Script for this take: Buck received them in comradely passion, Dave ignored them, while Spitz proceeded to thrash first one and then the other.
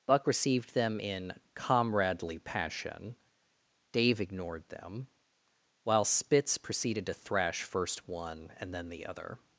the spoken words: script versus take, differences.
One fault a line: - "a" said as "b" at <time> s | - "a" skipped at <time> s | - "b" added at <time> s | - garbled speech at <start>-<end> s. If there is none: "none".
none